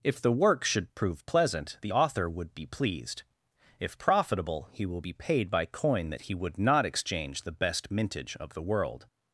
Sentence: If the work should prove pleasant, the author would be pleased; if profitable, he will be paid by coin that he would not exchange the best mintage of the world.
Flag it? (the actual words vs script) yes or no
no